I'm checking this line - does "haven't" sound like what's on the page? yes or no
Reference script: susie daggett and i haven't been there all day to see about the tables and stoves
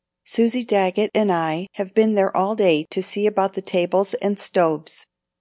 no